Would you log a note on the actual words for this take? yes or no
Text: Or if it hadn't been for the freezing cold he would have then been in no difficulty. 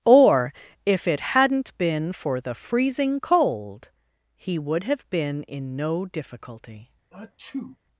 yes